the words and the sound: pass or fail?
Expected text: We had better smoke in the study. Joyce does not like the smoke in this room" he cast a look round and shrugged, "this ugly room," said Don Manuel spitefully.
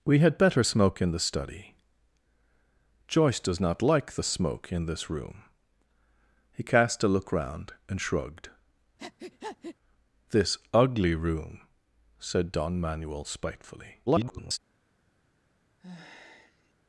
fail